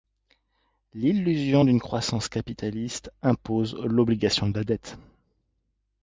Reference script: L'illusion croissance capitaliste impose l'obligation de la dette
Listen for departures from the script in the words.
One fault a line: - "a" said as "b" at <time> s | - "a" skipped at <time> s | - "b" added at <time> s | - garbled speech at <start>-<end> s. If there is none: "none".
- "d'une" added at 1.6 s